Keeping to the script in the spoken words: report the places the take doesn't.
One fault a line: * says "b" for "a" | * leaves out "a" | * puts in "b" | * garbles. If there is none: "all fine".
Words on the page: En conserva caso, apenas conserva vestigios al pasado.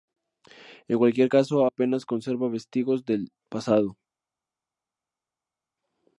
* says "cualquier" for "conserva"
* says "del" for "al"